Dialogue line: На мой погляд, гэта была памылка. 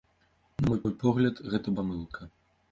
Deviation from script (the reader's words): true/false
true